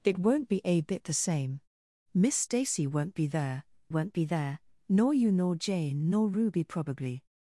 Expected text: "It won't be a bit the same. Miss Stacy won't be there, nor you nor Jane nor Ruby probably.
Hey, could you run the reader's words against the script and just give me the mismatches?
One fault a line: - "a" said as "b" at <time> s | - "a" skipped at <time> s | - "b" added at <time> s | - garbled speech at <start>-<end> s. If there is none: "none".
- "won't be there" added at 3.9 s